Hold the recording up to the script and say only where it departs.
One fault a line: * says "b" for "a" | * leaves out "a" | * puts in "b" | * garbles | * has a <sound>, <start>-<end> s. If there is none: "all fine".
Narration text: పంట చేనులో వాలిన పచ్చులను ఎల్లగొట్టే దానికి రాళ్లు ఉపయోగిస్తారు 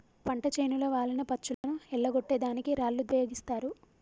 * has a dropout, 1.5-1.6 s